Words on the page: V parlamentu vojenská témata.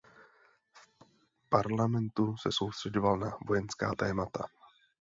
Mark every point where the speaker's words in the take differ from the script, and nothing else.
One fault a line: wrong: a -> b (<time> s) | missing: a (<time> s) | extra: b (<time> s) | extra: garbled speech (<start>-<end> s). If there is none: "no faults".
extra: se soustřeďoval na (2.4 s)